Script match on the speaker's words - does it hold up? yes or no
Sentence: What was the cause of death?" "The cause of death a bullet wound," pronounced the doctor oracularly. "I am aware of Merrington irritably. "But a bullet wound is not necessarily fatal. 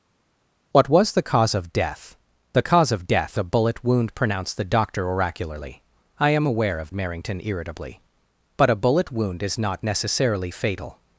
yes